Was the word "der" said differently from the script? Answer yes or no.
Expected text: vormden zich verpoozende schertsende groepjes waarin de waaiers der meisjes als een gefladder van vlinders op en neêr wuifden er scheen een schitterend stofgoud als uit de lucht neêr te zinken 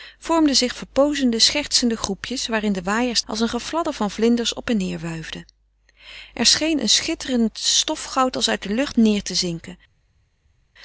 yes